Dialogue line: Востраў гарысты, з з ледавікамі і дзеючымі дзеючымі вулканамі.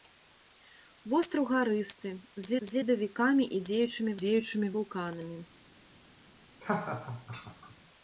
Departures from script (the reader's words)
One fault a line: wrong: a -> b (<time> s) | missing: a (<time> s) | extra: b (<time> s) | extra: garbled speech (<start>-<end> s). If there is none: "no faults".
no faults